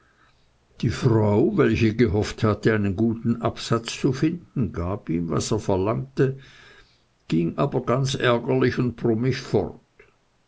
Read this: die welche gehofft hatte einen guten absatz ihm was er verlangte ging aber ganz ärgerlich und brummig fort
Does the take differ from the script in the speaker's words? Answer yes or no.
yes